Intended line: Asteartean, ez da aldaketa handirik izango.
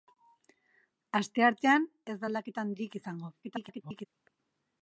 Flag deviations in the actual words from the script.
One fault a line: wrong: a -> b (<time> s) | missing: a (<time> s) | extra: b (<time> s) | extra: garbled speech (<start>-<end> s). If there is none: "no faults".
extra: garbled speech (3.4-4.1 s)